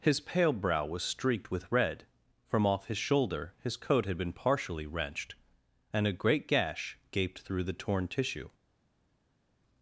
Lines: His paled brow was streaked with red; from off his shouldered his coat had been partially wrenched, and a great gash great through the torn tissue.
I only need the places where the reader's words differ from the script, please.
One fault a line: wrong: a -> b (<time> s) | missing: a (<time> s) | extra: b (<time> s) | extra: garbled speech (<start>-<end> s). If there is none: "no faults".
wrong: paled -> pale (0.2 s)
wrong: shouldered -> shoulder (3.0 s)
wrong: great -> gaped (7.1 s)